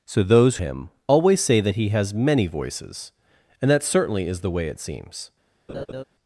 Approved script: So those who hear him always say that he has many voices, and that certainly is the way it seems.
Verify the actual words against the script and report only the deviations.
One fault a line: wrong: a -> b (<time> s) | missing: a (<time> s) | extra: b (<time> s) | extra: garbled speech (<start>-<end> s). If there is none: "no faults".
missing: who hear (0.6 s)